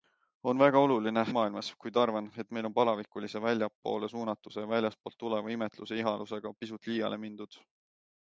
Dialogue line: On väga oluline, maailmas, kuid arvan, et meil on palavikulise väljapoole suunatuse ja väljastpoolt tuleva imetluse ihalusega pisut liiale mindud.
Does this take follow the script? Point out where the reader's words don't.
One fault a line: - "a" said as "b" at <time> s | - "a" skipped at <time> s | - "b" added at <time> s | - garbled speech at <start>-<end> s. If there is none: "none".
none